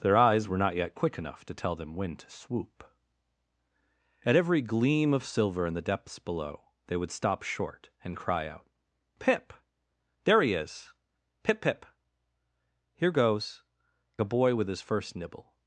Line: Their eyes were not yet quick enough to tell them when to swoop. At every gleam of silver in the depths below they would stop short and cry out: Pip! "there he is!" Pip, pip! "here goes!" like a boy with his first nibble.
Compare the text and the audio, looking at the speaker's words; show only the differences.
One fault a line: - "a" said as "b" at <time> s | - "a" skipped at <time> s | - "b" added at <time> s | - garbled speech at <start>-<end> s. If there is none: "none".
- "like" skipped at 13.6 s